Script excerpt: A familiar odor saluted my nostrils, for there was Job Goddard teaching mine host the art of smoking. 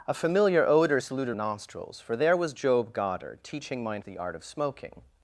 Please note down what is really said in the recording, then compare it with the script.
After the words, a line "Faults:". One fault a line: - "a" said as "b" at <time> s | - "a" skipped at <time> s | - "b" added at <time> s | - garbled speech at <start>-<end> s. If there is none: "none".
A familiar odor saluted nostrils, for there was Job Goddard teaching mine the art of smoking.
Faults:
- "my" skipped at 1.4 s
- "host" skipped at 4.0 s